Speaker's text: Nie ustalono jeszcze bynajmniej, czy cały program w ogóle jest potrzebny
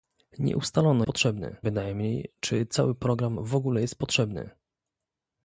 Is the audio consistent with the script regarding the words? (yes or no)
no